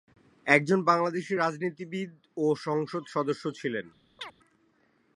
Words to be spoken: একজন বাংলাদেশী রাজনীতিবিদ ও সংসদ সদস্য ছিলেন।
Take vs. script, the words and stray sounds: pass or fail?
fail